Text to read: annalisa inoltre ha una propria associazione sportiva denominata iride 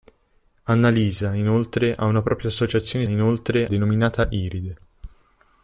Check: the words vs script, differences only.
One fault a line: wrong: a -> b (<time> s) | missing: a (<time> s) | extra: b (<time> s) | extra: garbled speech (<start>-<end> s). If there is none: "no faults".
wrong: sportiva -> inoltre (3.1 s)